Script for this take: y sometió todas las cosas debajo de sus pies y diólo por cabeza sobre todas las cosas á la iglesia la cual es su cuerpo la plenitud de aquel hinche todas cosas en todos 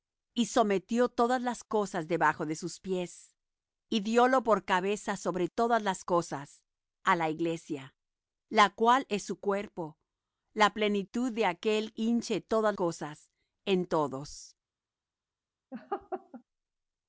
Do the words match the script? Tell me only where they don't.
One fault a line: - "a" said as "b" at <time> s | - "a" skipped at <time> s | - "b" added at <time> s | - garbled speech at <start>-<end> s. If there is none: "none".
none